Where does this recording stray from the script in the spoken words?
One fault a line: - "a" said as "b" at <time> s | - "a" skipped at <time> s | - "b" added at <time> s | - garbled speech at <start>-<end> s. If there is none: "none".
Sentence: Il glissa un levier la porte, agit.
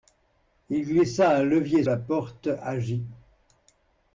none